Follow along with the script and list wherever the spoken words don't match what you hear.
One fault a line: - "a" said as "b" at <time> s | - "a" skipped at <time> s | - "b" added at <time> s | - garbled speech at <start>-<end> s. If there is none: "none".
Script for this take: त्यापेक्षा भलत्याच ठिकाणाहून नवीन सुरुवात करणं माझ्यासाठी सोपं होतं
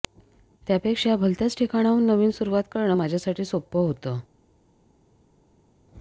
none